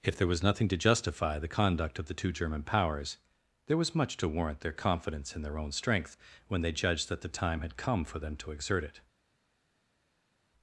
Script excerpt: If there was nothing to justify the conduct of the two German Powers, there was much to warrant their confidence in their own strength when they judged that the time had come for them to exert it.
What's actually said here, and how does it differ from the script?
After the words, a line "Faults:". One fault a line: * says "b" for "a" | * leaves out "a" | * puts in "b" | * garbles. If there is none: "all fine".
If there was nothing to justify the conduct of the two German Powers, there was much to warrant their confidence in their own strength when they judged that the time had come for them to exert it.
Faults:
all fine